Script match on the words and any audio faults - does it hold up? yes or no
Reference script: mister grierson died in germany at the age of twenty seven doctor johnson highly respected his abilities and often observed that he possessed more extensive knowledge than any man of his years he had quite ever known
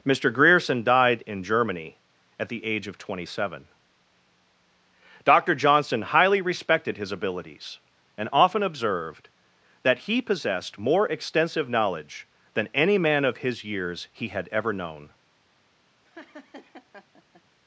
no